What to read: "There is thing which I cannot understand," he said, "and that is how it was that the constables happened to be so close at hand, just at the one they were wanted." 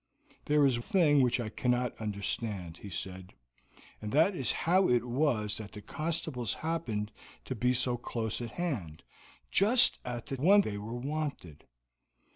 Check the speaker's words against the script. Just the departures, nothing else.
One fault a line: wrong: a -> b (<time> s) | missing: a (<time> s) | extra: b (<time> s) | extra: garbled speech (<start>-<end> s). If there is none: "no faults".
no faults